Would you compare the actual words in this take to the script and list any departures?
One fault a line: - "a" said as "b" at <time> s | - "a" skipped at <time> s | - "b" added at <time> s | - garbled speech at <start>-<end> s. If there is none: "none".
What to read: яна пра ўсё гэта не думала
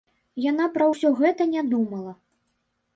none